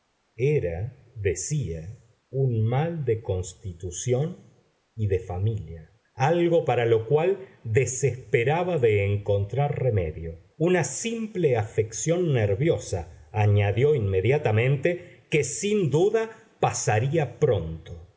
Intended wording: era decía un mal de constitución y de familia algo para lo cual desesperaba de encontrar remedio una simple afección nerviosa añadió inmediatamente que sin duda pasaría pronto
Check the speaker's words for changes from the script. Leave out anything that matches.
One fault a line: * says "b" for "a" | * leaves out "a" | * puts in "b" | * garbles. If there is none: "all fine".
all fine